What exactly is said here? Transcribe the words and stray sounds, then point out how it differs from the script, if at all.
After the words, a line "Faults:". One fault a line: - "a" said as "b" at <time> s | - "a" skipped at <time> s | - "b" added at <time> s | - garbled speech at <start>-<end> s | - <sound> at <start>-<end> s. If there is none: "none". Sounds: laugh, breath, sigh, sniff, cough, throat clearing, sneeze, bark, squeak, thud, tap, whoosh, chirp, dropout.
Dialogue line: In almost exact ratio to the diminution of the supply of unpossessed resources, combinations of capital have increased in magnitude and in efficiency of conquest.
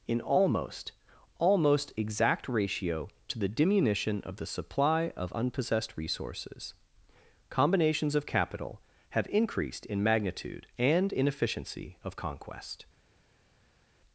In almost almost exact ratio to the diminution of the supply of unpossessed resources, combinations of capital have increased in magnitude and in efficiency of conquest.
Faults:
- "almost" added at 1.4 s